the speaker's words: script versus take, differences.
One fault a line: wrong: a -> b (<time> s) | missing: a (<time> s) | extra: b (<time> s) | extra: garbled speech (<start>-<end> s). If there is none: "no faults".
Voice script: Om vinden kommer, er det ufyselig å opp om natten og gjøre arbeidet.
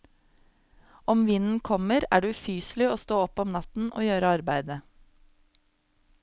extra: stå (3.0 s)